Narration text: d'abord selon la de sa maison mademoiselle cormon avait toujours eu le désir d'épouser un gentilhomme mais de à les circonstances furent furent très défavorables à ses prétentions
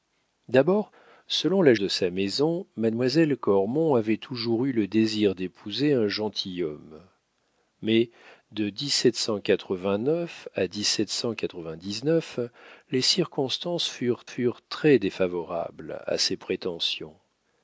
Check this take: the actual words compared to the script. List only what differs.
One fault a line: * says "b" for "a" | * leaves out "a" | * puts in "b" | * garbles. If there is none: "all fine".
all fine